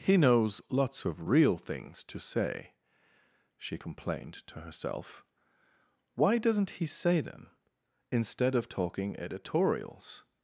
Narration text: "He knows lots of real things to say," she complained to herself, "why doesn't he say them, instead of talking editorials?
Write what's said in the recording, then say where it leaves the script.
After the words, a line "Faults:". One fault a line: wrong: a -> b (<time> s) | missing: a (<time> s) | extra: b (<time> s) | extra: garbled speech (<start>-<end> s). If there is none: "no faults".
"He knows lots of real things to say," she complained to herself, "why doesn't he say them, instead of talking editorials?
Faults:
no faults